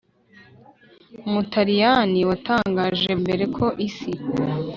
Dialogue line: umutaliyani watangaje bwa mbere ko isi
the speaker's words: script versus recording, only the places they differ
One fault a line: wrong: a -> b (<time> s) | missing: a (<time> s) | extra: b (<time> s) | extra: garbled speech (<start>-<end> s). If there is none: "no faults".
missing: bwa (3.1 s)